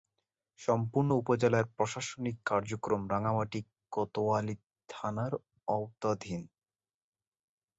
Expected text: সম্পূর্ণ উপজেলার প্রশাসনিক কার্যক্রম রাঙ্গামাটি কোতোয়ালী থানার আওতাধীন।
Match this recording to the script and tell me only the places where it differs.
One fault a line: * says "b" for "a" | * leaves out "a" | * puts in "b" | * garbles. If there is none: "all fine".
all fine